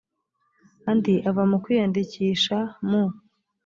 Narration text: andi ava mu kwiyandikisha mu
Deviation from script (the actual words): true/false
false